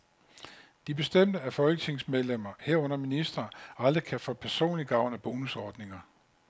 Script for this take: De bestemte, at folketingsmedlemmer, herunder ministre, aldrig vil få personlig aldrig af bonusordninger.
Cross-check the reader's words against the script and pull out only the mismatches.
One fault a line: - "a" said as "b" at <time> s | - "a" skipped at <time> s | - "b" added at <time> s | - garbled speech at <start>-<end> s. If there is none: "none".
- "vil" said as "kan" at 4.0 s
- "aldrig" said as "gavn" at 4.9 s